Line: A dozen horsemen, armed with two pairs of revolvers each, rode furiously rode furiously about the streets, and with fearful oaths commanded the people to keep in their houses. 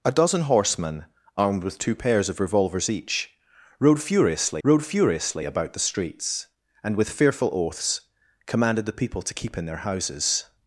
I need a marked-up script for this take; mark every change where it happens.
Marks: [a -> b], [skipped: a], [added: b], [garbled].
A dozen horsemen, armed with two pairs of revolvers each, rode furiously rode furiously about the streets, and with fearful oaths commanded the people to keep in their houses.